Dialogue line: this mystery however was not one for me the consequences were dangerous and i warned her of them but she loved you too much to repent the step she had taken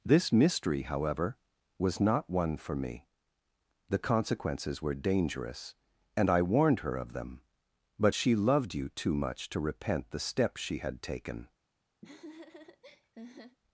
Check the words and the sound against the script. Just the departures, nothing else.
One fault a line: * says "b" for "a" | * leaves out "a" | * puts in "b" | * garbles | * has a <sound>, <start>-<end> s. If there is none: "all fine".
* has a laugh, 12.0-13.6 s